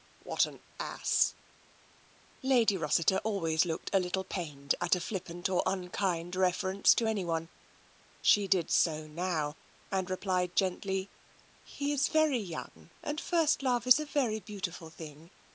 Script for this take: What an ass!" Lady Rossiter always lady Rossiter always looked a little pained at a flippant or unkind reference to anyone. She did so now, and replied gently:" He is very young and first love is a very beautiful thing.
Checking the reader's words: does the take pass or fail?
fail